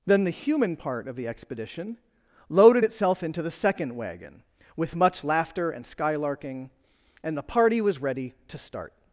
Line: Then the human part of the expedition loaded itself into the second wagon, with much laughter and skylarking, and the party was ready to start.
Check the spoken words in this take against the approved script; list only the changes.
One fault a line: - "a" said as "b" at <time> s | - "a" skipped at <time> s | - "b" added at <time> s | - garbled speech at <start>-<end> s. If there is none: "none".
none